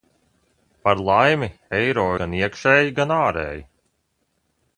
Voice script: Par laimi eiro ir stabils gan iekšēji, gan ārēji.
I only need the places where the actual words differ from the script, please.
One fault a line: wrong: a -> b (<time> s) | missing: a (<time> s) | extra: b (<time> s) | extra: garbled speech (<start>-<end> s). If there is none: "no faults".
missing: ir stabils (2.0 s)